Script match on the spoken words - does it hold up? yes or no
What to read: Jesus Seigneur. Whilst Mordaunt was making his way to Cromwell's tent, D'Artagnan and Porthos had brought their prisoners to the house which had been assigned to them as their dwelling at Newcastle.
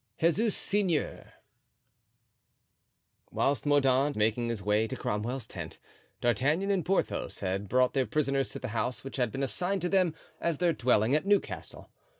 no